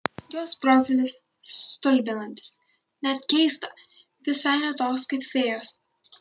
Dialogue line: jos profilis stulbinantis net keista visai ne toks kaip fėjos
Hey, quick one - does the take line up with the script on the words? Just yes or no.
yes